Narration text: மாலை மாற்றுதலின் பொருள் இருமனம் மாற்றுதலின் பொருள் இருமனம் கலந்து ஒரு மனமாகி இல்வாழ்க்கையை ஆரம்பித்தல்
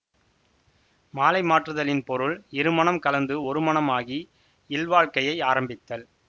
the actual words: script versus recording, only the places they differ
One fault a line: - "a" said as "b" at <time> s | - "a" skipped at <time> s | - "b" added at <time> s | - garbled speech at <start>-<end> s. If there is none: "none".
- "மாற்றுதலின் பொருள் இருமனம்" skipped at 3.0 s